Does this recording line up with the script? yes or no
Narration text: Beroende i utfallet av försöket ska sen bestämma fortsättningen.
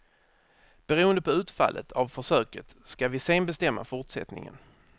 no